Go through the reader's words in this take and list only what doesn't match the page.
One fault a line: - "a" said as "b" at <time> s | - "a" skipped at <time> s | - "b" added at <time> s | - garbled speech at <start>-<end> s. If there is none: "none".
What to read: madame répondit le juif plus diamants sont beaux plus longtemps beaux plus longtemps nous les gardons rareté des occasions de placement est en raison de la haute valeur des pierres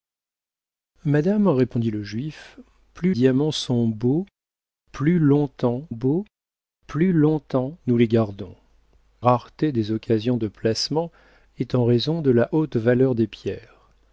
none